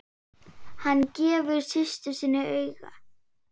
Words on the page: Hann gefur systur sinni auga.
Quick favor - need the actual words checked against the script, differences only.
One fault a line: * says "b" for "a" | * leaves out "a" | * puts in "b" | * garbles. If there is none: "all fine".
all fine